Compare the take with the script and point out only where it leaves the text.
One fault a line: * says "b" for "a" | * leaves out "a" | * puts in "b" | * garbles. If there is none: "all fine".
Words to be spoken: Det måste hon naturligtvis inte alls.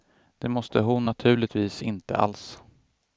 all fine